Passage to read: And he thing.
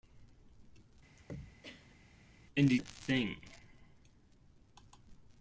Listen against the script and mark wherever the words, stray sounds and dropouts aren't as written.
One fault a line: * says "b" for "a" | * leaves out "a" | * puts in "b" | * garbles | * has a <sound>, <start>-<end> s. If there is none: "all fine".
* has a throat clearing, 1.2-2.0 s